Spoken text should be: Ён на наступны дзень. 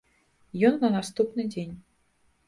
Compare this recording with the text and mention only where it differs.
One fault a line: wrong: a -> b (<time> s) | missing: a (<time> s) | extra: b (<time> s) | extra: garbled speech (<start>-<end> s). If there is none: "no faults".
no faults